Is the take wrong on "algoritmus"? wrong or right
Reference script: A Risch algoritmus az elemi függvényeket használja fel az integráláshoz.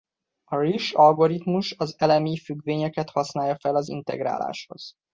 right